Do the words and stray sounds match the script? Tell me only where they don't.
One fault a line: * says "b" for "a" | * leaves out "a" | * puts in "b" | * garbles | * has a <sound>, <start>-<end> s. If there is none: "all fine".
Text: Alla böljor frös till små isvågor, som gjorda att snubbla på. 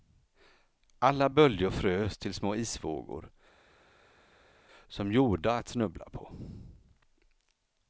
all fine